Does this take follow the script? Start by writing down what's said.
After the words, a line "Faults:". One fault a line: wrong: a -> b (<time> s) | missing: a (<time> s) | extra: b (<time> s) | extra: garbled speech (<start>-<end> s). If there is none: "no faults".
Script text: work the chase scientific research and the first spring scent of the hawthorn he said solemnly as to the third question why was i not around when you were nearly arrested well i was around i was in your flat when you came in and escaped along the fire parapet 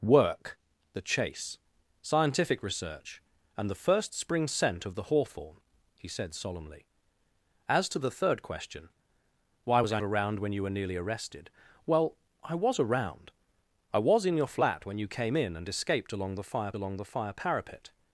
work the chase scientific research and the first spring scent of the hawthorn he said solemnly as to the third question why was i around when you were nearly arrested well i was around i was in your flat when you came in and escaped along the fire along the fire parapet
Faults:
missing: not (10.0 s)
extra: along the fire (16.7 s)